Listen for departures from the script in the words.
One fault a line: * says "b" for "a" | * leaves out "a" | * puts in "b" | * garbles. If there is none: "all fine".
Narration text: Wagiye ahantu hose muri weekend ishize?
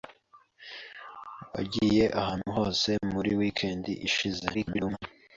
* garbles